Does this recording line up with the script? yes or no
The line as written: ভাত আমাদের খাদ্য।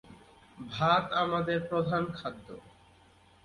no